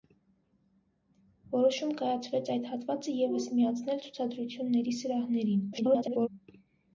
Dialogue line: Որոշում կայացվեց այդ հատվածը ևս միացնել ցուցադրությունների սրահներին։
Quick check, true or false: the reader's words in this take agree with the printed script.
false